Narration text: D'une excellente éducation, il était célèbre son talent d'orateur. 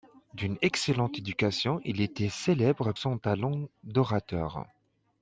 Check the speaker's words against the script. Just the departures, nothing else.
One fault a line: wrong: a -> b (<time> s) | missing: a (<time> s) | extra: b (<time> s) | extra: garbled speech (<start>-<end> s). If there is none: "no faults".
no faults